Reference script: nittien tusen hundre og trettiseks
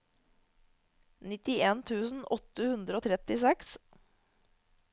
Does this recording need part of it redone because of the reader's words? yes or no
yes